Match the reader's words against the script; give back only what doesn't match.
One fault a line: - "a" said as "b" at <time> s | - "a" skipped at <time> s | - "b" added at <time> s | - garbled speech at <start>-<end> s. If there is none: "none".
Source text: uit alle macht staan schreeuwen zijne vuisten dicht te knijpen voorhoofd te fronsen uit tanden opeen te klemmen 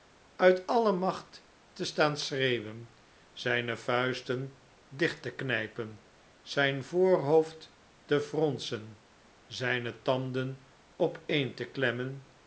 - "te" added at 1.7 s
- "zijn" added at 6.4 s
- "uit" said as "zijne" at 9.5 s